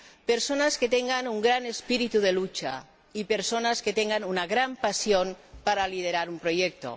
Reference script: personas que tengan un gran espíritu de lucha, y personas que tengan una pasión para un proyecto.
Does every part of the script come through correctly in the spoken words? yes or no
no